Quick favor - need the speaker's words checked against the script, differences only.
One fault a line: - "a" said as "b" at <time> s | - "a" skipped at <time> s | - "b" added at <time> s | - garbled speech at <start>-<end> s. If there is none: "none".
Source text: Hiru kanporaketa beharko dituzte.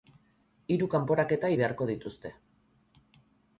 none